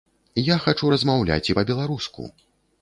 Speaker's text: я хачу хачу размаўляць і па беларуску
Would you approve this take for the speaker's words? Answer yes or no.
no